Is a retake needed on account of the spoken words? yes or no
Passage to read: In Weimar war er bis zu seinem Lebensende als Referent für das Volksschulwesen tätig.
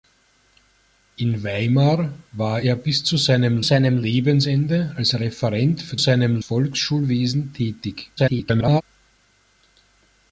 yes